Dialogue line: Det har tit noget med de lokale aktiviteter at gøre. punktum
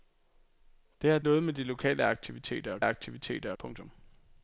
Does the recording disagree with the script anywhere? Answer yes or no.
yes